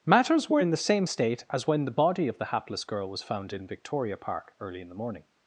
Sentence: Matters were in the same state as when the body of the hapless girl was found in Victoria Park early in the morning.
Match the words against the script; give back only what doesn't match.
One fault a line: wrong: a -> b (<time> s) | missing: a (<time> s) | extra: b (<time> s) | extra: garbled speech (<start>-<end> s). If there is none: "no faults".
no faults